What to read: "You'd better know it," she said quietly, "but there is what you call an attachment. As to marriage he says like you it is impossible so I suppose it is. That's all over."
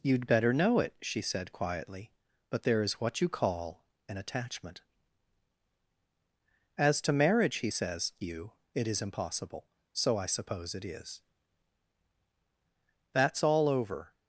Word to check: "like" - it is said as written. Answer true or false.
false